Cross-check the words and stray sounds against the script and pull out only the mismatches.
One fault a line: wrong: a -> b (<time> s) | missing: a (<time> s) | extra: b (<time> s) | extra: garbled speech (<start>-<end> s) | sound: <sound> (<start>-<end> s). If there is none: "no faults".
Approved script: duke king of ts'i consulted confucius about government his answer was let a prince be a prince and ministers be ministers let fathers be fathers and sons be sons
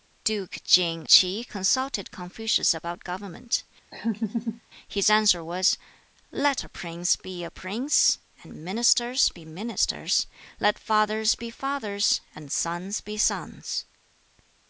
missing: of (1.1 s)
sound: laugh (3.9-4.6 s)